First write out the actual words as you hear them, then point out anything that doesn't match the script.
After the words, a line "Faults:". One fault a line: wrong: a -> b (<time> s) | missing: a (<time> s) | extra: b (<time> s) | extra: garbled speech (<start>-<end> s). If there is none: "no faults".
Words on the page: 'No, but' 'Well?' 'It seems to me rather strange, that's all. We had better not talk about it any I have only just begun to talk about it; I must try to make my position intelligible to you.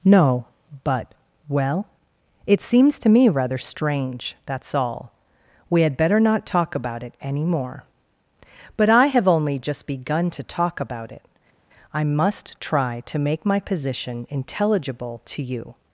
'No, but' 'Well?' 'It seems to me rather strange, that's all. We had better not talk about it any more.' 'But I have only just begun to talk about it; I must try to make my position intelligible to you.
Faults:
extra: more But (7.5 s)